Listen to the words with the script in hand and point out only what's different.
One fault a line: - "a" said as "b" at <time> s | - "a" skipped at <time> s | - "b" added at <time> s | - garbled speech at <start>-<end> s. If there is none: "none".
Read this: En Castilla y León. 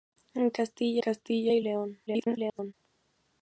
- "Castilla" added at 1.0 s
- garbled speech at 2.1-2.7 s